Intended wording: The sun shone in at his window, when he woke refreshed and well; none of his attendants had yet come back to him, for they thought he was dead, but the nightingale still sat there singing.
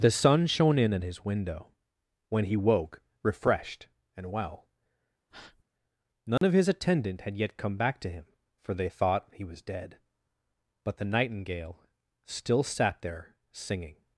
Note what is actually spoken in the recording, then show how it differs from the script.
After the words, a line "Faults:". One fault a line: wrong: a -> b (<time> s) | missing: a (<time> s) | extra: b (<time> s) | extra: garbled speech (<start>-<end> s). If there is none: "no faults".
The sun shone in at his window, when he woke refreshed and well; none of his attendant had yet come back to him, for they thought he was dead, but the nightingale still sat there singing.
Faults:
wrong: attendants -> attendant (6.7 s)